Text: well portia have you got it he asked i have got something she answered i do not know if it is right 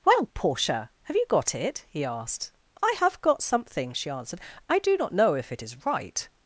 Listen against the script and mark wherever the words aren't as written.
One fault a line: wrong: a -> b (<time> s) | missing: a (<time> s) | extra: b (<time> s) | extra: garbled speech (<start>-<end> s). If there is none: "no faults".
no faults